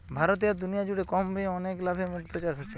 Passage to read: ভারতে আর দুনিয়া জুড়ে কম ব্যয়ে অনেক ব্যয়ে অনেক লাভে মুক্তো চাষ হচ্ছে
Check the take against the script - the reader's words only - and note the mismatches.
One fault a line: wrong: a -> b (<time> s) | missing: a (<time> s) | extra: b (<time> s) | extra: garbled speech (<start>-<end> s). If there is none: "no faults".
missing: ব্যয়ে অনেক (1.8 s)